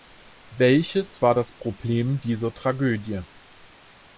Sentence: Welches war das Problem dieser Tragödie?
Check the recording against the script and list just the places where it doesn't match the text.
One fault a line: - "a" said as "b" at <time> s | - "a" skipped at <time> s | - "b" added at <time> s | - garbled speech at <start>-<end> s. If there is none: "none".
none